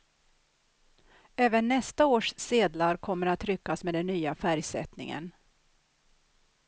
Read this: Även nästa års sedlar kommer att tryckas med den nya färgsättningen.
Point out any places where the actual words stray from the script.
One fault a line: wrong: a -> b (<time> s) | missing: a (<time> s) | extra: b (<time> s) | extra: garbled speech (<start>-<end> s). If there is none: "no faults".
no faults